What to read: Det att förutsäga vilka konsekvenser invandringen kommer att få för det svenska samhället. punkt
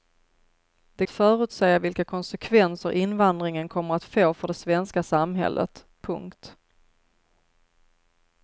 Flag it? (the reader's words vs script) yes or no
no